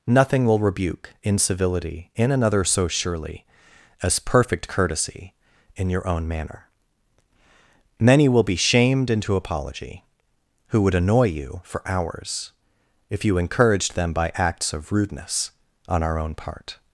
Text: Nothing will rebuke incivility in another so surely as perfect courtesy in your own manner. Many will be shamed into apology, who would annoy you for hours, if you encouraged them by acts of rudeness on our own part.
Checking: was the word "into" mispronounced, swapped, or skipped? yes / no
no